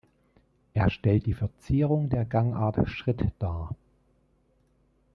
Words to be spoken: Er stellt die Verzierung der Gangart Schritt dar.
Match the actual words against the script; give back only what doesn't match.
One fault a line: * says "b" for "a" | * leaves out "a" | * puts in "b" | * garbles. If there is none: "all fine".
all fine